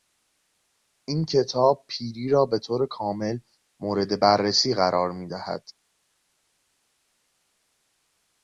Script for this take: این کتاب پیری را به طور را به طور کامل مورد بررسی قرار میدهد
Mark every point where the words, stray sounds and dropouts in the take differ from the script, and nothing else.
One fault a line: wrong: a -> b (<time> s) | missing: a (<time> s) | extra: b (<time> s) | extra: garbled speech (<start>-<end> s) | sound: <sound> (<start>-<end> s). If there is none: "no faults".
missing: را به طور (2.9 s)